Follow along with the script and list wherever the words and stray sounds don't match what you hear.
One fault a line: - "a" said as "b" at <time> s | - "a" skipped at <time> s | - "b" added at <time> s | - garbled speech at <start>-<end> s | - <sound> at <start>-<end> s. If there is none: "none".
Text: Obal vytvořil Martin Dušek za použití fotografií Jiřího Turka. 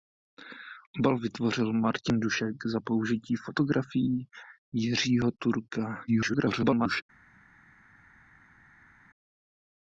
- garbled speech at 6.1-7.0 s